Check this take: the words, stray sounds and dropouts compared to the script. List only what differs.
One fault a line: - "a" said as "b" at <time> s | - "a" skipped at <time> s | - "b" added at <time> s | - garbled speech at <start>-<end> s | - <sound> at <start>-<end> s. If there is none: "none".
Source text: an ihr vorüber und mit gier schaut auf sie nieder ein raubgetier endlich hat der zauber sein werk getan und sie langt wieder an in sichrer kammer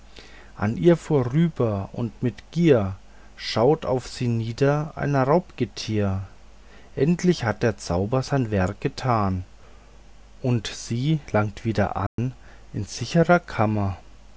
- dropout at 12.1-12.2 s